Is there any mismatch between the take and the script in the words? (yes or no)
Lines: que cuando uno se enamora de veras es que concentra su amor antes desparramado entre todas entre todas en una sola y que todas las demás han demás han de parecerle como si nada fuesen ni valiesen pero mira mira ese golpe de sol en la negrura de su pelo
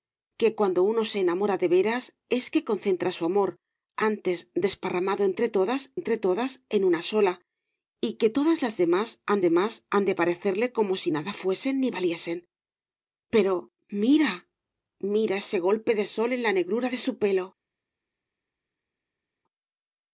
no